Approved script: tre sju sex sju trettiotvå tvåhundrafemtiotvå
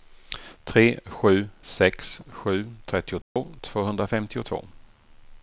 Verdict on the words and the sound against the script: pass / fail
fail